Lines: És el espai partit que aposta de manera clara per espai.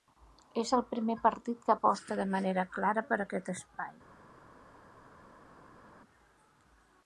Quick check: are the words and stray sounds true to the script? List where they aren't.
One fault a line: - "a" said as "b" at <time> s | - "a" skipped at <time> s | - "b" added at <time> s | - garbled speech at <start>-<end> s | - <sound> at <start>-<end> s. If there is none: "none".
- "espai" said as "primer" at 0.9 s
- "aquest" added at 3.3 s